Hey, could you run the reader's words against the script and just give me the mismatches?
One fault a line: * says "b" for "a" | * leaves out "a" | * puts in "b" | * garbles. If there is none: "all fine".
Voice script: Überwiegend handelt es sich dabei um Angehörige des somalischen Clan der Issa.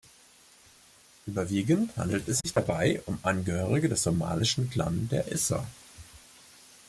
all fine